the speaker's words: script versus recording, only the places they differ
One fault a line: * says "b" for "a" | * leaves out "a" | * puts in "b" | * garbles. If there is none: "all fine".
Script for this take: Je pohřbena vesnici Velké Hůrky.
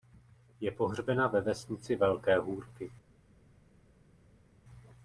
* puts in "ve"